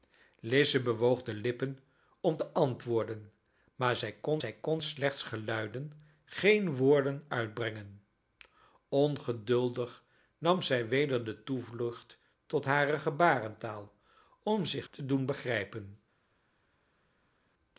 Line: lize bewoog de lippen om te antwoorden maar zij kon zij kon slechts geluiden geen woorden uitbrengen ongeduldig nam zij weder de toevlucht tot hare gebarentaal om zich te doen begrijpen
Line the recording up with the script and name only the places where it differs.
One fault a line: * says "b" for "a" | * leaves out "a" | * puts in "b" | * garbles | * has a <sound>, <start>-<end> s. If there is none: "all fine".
all fine